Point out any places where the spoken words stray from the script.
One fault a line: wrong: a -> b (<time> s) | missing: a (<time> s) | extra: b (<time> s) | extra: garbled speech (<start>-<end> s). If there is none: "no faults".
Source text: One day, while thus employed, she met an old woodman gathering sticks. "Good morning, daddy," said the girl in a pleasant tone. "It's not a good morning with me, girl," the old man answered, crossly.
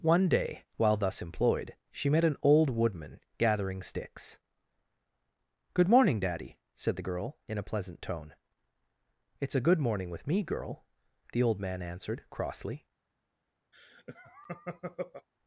missing: not (9.6 s)